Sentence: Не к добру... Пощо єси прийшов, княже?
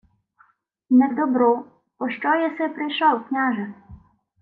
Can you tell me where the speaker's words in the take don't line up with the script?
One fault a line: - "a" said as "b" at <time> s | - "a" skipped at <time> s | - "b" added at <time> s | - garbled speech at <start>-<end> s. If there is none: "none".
none